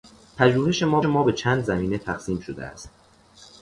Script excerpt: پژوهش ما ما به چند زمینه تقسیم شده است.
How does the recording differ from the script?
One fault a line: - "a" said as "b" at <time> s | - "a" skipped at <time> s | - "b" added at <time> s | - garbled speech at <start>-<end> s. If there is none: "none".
none